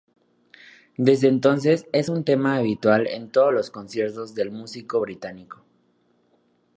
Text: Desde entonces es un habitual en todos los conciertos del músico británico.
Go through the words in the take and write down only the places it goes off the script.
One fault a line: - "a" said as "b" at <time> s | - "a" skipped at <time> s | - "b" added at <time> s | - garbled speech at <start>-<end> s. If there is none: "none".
- "tema" added at 2.2 s